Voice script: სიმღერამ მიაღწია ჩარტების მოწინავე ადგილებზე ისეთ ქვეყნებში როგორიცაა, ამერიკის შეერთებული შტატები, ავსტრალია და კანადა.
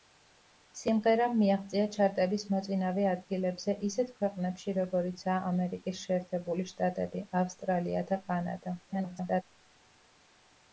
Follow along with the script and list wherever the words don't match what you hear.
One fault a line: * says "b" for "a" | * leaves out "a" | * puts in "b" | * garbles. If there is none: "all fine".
* garbles